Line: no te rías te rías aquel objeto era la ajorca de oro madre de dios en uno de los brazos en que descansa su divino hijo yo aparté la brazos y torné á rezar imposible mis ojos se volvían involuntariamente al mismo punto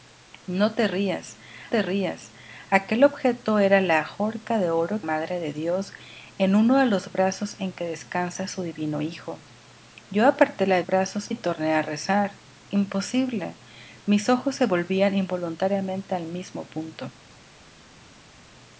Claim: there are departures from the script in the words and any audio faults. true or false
false